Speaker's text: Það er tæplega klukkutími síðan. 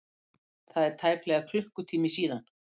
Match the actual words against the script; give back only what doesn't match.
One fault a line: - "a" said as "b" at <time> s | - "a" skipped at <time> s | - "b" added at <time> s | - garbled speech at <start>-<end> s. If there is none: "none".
none